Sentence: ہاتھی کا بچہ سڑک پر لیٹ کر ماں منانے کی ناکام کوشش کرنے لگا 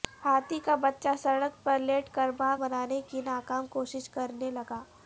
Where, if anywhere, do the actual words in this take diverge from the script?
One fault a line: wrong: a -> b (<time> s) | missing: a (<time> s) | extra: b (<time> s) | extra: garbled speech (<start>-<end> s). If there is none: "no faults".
no faults